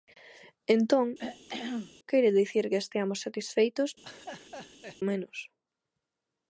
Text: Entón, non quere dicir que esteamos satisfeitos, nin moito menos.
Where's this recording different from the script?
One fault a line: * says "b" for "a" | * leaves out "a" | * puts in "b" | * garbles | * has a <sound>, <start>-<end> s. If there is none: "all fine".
* leaves out "non"
* has a throat clearing, 1.2-1.9 s
* leaves out "nin moito"
* has a laugh, 4.0-5.0 s